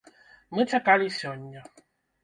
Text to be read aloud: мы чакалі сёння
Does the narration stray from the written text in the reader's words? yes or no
no